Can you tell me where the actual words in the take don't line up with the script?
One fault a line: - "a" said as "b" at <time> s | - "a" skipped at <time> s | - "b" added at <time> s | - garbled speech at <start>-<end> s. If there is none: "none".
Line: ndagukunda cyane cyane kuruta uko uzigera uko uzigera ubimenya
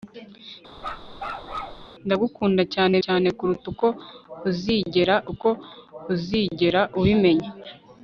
none